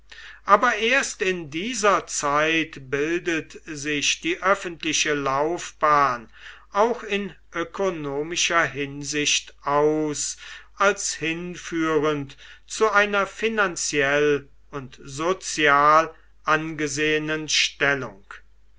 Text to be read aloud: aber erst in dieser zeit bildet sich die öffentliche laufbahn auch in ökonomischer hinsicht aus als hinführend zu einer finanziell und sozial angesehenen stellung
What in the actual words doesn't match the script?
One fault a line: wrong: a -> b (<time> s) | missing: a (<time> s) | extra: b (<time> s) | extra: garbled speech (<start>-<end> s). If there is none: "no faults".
no faults